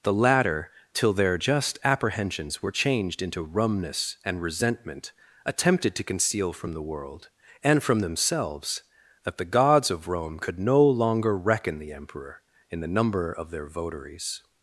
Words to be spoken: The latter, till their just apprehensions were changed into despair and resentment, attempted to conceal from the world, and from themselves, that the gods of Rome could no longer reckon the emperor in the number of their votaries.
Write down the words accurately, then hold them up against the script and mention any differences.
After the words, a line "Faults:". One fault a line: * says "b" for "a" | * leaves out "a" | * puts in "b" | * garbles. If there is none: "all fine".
The latter, till their just apprehensions were changed into rumness and resentment, attempted to conceal from the world, and from themselves, that the gods of Rome could no longer reckon the emperor in the number of their votaries.
Faults:
* says "rumness" for "despair"